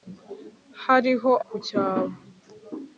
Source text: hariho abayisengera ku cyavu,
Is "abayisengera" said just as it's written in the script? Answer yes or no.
no